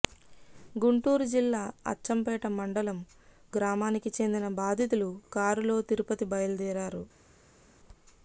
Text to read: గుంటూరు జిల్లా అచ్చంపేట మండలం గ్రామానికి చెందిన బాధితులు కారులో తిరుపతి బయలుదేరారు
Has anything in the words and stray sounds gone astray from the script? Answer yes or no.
no